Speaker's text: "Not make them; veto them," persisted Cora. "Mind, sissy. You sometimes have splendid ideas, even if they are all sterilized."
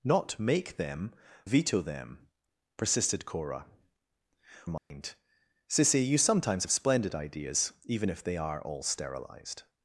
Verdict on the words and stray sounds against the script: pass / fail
fail